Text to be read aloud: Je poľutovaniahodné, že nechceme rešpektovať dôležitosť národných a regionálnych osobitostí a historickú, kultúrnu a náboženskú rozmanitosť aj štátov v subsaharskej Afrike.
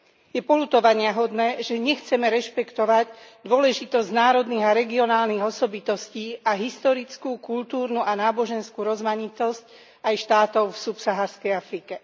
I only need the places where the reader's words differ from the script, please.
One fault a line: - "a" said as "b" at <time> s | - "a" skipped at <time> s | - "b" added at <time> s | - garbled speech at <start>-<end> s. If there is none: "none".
none